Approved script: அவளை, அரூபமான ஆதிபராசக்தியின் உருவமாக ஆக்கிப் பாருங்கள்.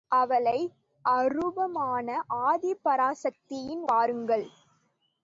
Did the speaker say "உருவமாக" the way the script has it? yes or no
no